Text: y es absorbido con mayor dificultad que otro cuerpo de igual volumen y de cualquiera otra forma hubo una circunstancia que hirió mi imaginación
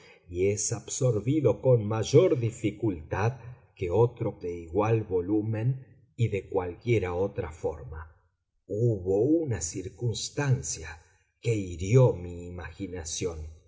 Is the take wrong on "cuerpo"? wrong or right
wrong